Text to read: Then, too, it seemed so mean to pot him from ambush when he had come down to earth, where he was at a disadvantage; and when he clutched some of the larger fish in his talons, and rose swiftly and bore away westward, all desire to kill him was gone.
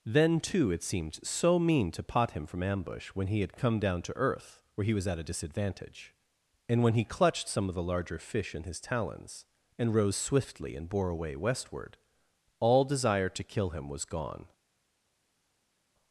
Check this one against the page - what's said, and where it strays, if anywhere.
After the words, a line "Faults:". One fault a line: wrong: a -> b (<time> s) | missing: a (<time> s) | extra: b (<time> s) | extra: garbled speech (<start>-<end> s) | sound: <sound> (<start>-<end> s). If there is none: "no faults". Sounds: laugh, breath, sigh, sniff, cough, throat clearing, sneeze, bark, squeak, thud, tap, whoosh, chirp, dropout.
Then, too, it seemed so mean to pot him from ambush when he had come down to earth, where he was at a disadvantage; and when he clutched some of the larger fish in his talons, and rose swiftly and bore away westward, all desire to kill him was gone.
Faults:
no faults